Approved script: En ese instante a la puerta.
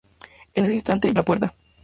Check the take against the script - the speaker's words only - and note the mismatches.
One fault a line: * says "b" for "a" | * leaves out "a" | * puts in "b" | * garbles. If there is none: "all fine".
all fine